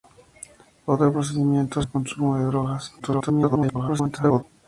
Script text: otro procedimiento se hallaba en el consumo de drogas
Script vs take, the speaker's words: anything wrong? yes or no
yes